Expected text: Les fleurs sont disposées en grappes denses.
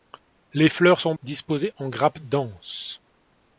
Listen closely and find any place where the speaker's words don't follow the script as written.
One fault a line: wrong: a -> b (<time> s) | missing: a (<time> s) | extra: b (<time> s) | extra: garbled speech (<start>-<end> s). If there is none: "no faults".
no faults